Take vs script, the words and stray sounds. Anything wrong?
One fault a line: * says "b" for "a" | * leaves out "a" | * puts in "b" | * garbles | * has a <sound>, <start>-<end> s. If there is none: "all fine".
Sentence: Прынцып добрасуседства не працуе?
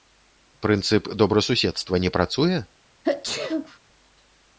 * has a sneeze, 3.0-3.8 s